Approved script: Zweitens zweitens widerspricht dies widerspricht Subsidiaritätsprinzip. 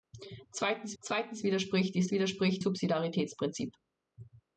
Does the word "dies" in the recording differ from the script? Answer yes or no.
no